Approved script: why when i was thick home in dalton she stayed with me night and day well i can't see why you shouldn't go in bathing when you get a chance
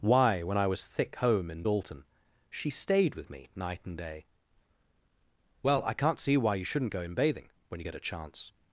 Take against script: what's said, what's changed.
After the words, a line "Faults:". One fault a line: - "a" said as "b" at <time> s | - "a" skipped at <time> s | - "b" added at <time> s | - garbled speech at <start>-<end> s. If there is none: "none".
why when i was thick home in dalton she stayed with me night and day well i can't see why you shouldn't go in bathing when you get a chance
Faults:
none